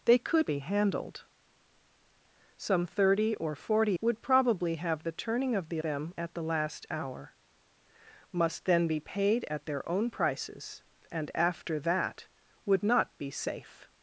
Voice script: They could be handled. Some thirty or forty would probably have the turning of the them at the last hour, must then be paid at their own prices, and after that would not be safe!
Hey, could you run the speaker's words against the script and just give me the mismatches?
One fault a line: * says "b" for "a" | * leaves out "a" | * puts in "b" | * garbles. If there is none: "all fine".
all fine